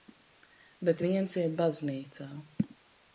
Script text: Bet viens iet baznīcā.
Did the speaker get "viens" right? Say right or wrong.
right